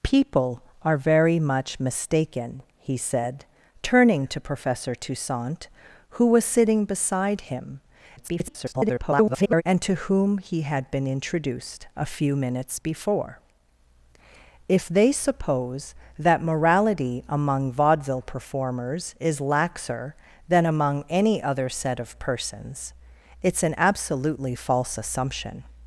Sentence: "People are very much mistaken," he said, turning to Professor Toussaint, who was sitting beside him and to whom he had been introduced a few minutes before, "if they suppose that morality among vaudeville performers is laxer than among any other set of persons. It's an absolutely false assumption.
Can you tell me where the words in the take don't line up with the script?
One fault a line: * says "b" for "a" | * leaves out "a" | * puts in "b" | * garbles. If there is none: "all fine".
* garbles